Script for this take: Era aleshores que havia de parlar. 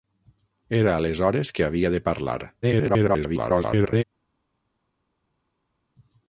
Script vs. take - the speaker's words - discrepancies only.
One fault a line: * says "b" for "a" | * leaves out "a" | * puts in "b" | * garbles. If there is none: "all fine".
* garbles